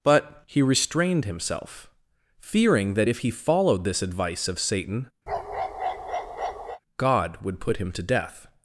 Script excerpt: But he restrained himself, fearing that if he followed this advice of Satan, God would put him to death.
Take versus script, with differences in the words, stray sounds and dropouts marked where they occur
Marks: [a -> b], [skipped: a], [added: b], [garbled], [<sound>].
But he restrained himself, fearing that if he followed this advice of Satan, [bark] God would put him to death.